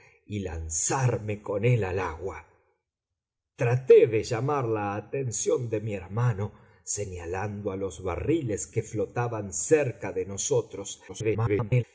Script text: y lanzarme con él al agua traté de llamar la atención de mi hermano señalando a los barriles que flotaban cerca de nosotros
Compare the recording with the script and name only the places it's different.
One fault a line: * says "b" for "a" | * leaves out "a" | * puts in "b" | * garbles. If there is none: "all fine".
* garbles